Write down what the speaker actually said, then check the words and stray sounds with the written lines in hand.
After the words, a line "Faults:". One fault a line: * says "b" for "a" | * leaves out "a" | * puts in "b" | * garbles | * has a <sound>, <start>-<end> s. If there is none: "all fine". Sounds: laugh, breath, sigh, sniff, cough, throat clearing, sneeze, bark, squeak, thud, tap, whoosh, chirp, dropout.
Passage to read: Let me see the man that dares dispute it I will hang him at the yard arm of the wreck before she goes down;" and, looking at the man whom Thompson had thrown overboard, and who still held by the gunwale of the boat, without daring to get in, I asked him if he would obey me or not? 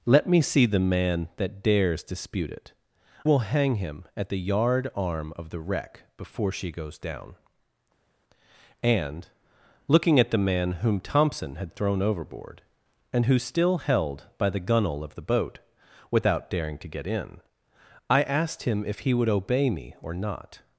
Let me see the man that dares dispute it will hang him at the yard arm of the wreck before she goes down;" and, looking at the man whom Thompson had thrown overboard, and who still held by the gunwale of the boat, without daring to get in, I asked him if he would obey me or not?
Faults:
* leaves out "I"